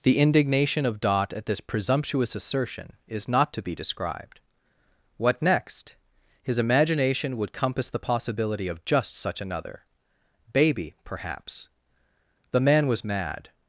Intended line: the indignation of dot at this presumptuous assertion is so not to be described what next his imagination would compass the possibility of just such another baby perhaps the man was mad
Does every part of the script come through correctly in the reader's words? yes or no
no